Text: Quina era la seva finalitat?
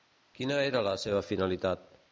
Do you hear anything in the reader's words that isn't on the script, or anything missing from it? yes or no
no